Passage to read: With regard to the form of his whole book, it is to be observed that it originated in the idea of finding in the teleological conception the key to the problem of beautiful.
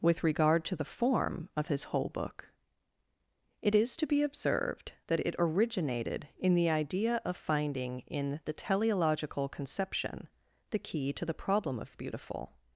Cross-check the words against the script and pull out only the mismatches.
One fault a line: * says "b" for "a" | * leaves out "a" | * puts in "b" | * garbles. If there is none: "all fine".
all fine